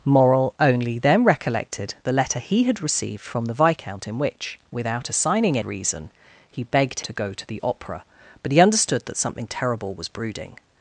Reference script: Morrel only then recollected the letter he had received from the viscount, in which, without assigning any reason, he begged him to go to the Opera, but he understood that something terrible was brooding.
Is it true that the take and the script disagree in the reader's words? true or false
true